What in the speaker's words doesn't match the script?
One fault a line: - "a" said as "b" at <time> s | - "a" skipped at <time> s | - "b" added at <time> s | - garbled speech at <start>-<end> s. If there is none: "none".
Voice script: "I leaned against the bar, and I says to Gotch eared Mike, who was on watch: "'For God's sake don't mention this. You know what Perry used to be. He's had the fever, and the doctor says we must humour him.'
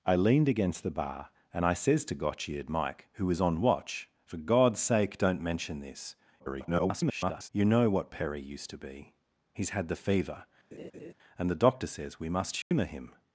- garbled speech at 6.4-7.5 s